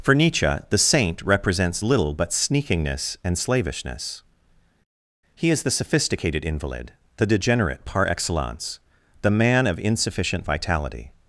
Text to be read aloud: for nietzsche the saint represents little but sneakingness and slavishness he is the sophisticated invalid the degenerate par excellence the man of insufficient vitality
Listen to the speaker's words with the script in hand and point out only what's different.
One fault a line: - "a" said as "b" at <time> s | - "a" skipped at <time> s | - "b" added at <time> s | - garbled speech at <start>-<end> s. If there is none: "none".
none